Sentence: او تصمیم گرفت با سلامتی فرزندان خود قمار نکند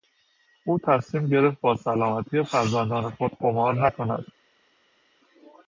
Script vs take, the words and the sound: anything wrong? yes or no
no